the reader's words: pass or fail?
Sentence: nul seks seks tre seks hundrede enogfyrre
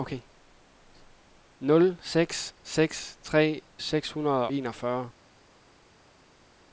pass